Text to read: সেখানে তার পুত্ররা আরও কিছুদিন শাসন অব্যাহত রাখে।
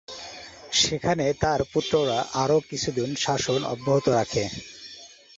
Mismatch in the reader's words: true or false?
false